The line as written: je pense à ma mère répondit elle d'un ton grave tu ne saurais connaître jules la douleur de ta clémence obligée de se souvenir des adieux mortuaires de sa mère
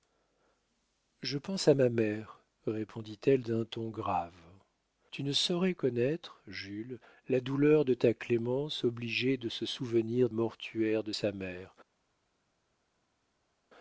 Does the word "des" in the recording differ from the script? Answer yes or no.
yes